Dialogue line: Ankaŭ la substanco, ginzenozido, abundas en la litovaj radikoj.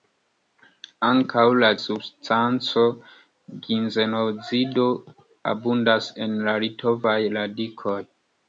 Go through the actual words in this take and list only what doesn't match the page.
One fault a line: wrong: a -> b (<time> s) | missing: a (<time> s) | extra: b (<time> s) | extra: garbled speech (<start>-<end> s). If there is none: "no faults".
no faults